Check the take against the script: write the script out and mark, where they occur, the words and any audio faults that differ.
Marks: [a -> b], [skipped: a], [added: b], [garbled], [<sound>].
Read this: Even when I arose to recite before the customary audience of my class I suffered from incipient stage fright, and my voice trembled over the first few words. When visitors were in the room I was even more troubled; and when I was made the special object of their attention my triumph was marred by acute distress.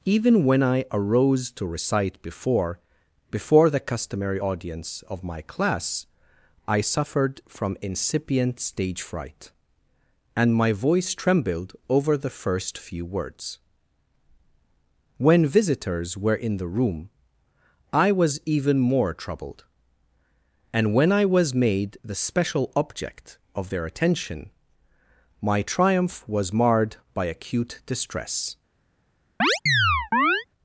Even when I arose to recite before [added: before] the customary audience of my class I suffered from incipient stage fright, and my voice trembled over the first few words. When visitors were in the room I was even more troubled; and when I was made the special object of their attention my triumph was marred by acute distress. [chirp]